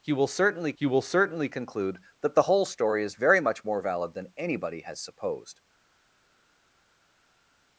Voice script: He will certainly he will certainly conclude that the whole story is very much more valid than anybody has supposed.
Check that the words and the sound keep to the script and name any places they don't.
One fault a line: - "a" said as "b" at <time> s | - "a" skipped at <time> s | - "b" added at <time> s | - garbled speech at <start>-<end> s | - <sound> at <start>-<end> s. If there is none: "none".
none